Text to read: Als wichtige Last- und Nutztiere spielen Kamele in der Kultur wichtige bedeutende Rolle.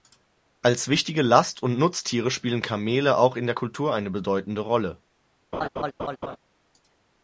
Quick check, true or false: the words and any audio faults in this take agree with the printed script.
false